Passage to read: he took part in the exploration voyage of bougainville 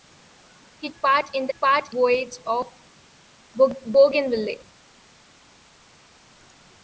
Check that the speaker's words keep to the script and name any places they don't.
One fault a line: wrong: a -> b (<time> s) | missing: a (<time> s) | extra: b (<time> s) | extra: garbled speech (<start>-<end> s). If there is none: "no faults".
missing: took (0.9 s)
wrong: exploration -> part (1.6 s)